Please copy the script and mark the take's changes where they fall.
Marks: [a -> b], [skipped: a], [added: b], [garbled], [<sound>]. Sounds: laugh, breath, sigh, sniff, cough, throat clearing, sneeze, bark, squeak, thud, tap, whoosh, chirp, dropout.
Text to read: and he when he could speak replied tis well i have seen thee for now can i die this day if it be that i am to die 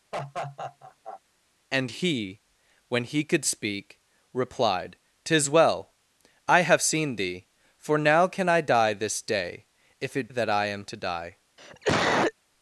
[laugh] and he when he could speak replied tis well i have seen thee for now can i die this day if it [skipped: be] that i am to die [cough]